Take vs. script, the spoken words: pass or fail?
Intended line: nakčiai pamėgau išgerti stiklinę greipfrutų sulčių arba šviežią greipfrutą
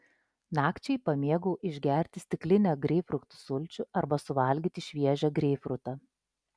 fail